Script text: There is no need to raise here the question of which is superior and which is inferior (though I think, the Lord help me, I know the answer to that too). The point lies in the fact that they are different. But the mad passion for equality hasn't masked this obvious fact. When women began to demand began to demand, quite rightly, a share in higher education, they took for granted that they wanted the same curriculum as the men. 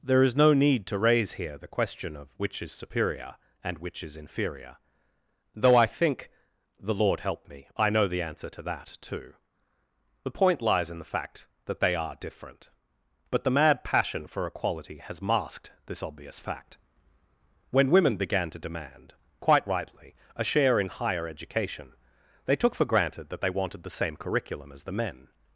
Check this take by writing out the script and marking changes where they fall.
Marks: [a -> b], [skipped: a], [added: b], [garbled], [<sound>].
There is no need to raise here the question of which is superior and which is inferior (though I think, the Lord help me, I know the answer to that too). The point lies in the fact that they are different. But the mad passion for equality [hasn't -> has] masked this obvious fact. When women began to demand [skipped: began to demand,] quite rightly, a share in higher education, they took for granted that they wanted the same curriculum as the men.